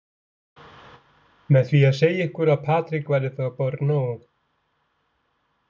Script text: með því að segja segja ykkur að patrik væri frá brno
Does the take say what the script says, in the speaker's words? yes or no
no